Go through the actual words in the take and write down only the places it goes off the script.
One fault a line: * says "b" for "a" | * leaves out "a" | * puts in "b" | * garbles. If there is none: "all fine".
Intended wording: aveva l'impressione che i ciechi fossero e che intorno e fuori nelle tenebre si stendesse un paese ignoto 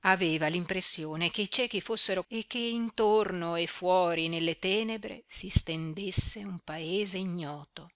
all fine